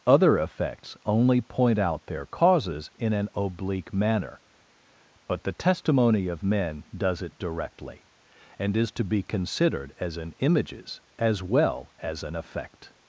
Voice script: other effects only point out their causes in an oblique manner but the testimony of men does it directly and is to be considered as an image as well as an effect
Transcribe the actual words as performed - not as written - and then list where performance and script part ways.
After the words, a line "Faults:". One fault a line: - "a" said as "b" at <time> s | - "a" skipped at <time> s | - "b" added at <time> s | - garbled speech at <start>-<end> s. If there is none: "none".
other effects only point out their causes in an oblique manner but the testimony of men does it directly and is to be considered as an images as well as an effect
Faults:
- "image" said as "images" at 10.4 s